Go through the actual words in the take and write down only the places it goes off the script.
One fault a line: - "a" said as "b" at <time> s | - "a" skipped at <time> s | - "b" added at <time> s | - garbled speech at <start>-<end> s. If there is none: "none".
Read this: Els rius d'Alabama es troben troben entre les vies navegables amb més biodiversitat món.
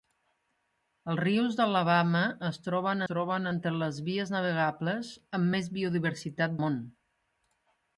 none